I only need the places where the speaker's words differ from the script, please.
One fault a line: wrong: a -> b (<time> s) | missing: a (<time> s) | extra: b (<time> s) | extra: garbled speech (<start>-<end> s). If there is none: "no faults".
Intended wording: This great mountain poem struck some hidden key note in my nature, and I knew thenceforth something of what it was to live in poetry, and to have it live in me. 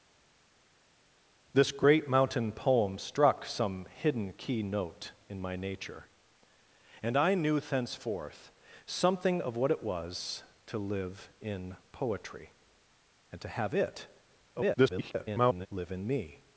extra: garbled speech (14.5-15.7 s)